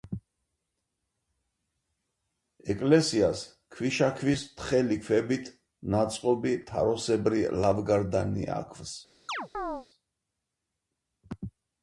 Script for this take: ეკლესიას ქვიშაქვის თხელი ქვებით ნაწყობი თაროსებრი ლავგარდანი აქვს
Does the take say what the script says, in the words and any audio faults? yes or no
no